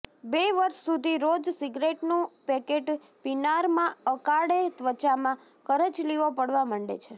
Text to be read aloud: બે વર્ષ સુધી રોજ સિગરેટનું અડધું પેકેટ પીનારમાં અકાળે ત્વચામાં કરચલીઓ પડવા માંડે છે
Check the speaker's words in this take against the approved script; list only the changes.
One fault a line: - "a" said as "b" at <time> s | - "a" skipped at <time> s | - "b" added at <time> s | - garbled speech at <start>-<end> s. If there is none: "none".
- "અડધું" skipped at 2.2 s